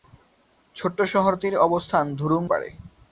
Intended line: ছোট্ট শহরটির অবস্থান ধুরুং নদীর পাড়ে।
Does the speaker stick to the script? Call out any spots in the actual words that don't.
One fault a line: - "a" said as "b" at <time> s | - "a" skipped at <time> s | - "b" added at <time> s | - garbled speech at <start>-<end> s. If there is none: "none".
- "নদীর" skipped at 2.4 s